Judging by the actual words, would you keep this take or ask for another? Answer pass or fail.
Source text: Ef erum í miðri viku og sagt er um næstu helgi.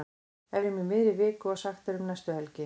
pass